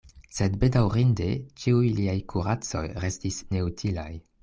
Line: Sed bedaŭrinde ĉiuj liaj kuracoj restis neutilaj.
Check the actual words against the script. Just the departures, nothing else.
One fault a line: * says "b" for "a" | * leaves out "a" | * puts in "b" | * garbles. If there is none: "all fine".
all fine